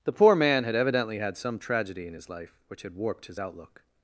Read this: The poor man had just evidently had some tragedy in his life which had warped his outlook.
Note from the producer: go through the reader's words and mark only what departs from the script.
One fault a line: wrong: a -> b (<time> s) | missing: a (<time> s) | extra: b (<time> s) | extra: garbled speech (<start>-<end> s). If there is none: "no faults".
missing: just (0.7 s)